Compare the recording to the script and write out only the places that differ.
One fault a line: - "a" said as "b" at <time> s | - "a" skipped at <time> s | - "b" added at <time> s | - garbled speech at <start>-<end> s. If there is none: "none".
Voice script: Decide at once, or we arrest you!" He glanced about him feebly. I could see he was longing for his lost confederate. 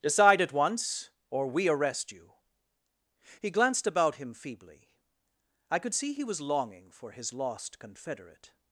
none